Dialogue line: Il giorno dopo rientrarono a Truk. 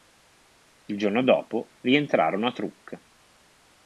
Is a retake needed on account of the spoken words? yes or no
no